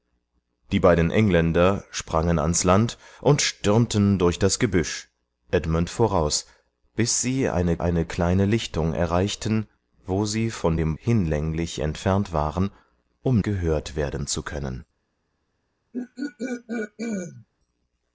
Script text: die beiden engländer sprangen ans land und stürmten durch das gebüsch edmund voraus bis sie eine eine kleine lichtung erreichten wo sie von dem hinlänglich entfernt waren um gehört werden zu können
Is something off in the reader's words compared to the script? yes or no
no